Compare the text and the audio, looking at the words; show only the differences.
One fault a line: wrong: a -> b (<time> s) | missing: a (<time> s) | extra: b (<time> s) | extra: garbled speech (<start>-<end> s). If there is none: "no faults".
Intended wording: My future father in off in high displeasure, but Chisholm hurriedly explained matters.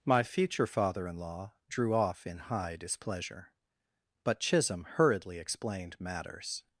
extra: law drew (1.2 s)